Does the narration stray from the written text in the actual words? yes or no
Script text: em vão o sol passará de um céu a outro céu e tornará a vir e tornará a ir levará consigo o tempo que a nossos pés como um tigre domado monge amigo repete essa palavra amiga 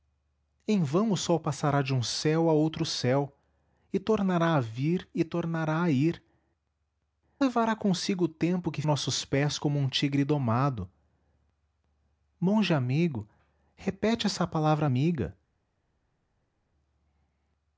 no